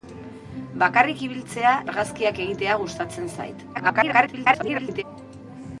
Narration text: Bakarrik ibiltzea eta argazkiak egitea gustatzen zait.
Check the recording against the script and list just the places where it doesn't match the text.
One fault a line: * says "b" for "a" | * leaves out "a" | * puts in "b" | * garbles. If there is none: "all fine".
* leaves out "eta"
* garbles